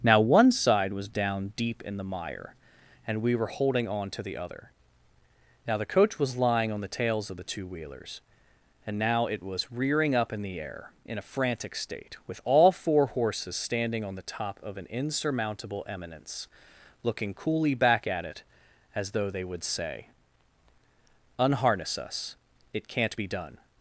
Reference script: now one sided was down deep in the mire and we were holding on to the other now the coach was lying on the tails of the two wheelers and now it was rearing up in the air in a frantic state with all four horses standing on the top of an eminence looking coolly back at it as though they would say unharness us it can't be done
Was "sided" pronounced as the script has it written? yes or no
no